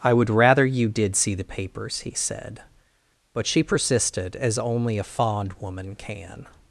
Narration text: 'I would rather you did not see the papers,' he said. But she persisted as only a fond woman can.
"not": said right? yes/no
no